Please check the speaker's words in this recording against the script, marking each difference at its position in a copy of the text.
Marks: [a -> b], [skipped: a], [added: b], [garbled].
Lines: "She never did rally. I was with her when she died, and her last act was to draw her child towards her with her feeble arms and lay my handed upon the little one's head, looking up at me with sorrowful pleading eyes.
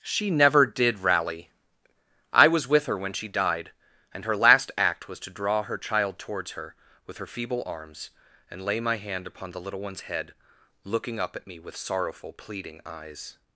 "She never did rally. I was with her when she died, and her last act was to draw her child towards her with her feeble arms and lay my [handed -> hand] upon the little one's head, looking up at me with sorrowful pleading eyes.